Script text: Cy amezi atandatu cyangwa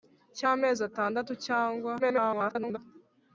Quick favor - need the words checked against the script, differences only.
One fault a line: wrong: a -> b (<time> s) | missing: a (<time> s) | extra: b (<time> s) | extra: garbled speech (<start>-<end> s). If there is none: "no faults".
extra: garbled speech (2.0-2.8 s)